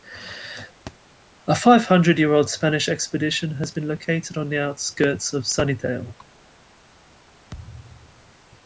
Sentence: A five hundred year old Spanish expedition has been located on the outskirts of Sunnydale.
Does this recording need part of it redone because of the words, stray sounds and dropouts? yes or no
yes